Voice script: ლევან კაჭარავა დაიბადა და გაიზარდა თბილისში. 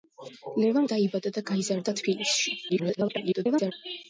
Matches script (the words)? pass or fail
fail